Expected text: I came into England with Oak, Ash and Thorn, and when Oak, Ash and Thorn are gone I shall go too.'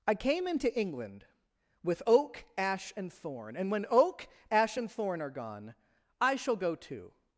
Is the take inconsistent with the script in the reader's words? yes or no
no